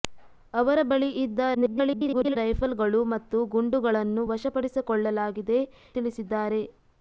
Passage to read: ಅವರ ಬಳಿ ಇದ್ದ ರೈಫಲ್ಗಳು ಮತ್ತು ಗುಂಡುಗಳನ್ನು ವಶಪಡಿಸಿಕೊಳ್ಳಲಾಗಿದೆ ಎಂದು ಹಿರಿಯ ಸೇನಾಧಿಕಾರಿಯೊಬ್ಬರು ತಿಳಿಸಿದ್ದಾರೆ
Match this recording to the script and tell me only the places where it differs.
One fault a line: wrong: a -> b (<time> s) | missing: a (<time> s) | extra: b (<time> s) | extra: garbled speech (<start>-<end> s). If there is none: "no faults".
extra: garbled speech (1.5-2.4 s)
missing: ಎಂದು ಹಿರಿಯ ಸೇನಾಧಿಕಾರಿಯೊಬ್ಬರು (5.6 s)